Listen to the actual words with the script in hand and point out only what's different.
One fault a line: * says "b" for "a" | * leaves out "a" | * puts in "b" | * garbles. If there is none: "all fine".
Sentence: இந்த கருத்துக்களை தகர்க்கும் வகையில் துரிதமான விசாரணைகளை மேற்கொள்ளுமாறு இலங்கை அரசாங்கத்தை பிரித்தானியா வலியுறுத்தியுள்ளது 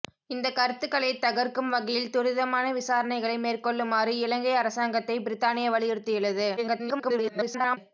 * garbles